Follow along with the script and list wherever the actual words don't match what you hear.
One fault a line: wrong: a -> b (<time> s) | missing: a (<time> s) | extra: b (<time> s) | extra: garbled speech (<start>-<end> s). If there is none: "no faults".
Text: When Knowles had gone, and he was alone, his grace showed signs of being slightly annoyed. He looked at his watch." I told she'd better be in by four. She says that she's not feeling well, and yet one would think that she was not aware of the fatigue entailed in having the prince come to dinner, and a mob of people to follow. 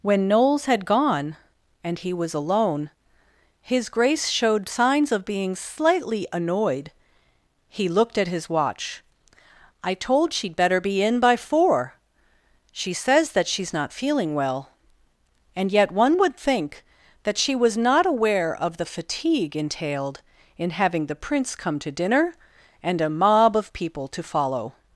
no faults